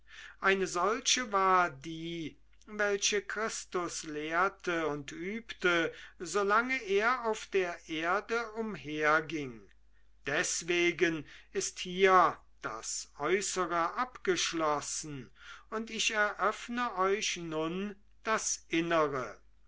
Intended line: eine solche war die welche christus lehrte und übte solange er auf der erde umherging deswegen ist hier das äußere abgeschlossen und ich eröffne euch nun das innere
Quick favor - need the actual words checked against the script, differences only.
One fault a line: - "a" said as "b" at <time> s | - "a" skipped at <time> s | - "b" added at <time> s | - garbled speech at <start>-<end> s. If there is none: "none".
none